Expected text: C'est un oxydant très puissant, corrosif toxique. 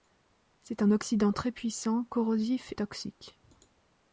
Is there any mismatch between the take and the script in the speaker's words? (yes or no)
no